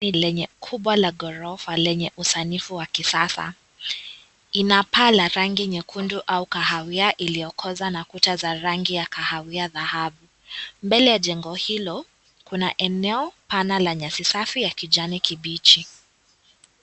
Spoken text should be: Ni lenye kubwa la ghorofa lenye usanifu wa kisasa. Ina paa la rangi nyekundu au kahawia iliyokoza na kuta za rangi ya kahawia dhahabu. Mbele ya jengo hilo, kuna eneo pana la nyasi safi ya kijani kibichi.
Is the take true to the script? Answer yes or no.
yes